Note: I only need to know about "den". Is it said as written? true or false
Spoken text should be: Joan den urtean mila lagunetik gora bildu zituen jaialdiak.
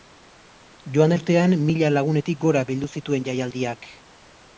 false